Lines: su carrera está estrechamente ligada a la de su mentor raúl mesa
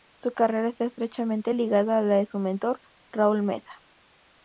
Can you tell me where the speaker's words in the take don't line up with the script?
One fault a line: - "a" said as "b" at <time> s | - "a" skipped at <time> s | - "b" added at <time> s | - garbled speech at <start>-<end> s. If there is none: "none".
none